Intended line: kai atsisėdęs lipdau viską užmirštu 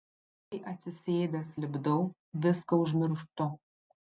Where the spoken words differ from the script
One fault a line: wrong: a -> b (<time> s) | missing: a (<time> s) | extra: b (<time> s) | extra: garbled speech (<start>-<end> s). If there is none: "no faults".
no faults